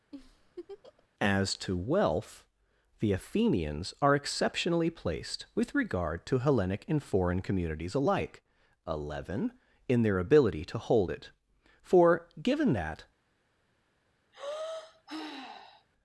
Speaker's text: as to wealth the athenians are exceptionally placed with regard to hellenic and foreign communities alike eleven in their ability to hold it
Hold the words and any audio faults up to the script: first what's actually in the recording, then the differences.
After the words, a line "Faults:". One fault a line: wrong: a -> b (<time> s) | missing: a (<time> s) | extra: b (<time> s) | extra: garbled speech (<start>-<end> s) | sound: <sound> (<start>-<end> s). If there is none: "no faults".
as to wealth the athenians are exceptionally placed with regard to hellenic and foreign communities alike eleven in their ability to hold it for given that
Faults:
sound: laugh (0.1-1.1 s)
extra: for given that (11.8 s)
sound: sigh (14.3-15.9 s)